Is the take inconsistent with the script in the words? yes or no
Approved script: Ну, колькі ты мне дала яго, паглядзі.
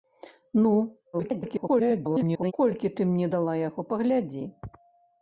yes